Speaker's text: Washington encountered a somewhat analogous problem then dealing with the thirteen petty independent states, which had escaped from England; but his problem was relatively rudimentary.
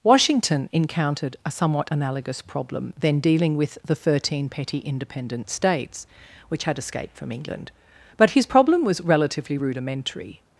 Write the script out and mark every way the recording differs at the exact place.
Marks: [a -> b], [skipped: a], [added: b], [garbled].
Washington encountered a somewhat analogous problem then dealing with the thirteen petty independent states, which had escaped from England; but his problem was relatively rudimentary.